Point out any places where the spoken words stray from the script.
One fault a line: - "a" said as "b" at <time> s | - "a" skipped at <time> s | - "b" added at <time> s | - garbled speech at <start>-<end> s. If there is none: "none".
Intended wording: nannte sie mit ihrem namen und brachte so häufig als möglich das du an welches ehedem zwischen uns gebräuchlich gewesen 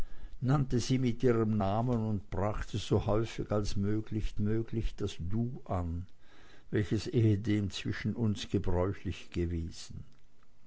- "möglich" added at 4.4 s